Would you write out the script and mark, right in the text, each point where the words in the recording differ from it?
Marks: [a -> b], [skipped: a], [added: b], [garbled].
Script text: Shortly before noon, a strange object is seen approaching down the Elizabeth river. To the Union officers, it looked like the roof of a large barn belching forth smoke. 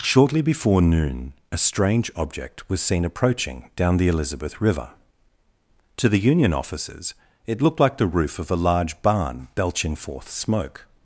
Shortly before noon, a strange object [is -> was] seen approaching down the Elizabeth river. To the Union officers, it looked like the roof of a large barn belching forth smoke.